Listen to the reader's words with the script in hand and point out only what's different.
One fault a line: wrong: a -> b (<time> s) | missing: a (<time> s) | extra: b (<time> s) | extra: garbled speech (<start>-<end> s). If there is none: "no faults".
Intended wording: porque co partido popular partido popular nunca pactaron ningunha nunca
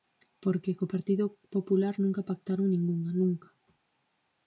missing: partido popular (1.9 s)